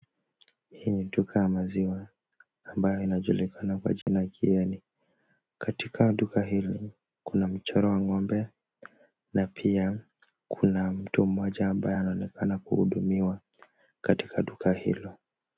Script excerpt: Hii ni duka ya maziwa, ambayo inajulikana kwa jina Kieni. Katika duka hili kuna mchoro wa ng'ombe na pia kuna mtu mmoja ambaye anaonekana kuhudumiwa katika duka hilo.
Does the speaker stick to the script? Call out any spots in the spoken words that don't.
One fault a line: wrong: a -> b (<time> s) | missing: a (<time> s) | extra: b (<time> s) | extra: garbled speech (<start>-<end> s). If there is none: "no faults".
no faults